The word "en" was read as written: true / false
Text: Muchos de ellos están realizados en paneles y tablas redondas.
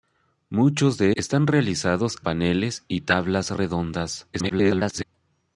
false